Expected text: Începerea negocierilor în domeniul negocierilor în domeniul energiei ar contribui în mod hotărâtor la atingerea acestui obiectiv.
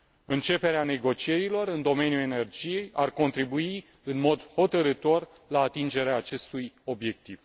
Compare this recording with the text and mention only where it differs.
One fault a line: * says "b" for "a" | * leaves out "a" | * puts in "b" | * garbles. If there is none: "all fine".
* leaves out "negocierilor în domeniul"